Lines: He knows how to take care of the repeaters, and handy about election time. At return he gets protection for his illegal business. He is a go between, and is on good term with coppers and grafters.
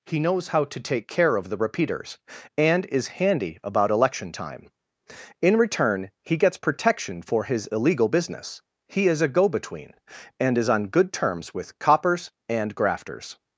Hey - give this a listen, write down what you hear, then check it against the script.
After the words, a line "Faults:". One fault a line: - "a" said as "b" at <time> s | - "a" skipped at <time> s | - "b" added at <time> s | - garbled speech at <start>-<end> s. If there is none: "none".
He knows how to take care of the repeaters, and is handy about election time. In return he gets protection for his illegal business. He is a go between, and is on good terms with coppers and grafters.
Faults:
- "is" added at 2.9 s
- "At" said as "In" at 5.4 s
- "term" said as "terms" at 11.1 s